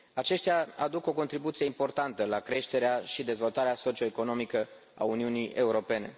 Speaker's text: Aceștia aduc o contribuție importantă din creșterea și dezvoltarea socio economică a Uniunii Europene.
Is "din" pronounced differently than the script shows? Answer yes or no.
yes